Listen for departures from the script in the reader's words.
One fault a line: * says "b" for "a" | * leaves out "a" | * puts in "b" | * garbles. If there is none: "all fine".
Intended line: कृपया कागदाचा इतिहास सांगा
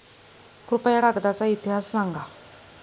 all fine